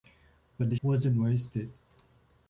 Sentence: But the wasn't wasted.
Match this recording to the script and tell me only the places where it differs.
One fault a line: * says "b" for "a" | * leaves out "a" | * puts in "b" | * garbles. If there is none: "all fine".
all fine